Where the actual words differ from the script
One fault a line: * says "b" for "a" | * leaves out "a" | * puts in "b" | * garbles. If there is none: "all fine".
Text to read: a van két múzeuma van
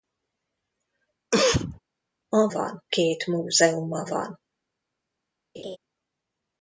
all fine